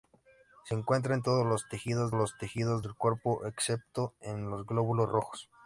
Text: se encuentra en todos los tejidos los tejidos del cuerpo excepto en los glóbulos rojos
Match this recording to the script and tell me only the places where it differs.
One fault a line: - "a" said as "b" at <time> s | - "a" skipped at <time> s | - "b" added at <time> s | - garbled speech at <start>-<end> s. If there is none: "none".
none